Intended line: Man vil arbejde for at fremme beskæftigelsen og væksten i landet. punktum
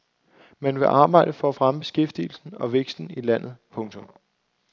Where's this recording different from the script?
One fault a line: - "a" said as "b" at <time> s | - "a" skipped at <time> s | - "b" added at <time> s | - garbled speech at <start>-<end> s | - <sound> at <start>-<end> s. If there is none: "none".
none